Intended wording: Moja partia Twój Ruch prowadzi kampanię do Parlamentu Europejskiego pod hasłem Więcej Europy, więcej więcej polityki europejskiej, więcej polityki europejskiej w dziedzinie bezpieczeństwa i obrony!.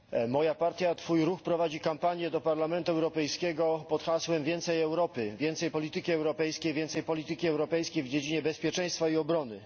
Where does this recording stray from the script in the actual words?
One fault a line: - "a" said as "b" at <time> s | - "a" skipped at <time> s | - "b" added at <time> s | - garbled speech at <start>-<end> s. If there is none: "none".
- "więcej" skipped at 5.7 s